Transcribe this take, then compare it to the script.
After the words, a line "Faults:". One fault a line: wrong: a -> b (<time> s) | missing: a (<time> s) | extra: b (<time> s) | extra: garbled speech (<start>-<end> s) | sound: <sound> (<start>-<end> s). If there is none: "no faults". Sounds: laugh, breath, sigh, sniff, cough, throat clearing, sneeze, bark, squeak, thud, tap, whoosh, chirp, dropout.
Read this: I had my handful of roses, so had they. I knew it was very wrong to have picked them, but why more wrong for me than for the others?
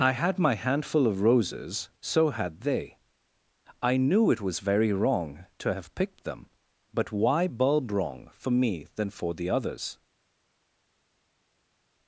I had my handful of roses, so had they. I knew it was very wrong to have picked them, but why bulb wrong for me than for the others?
Faults:
wrong: more -> bulb (7.4 s)